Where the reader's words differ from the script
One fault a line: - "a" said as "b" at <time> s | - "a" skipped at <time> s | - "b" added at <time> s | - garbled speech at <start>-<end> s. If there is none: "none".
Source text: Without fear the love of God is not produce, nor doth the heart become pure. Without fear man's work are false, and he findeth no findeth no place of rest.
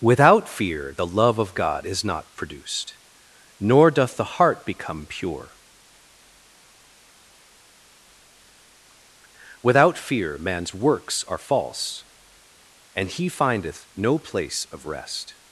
- "produce" said as "produced" at 2.4 s
- "work" said as "works" at 10.7 s
- "findeth no" skipped at 14.2 s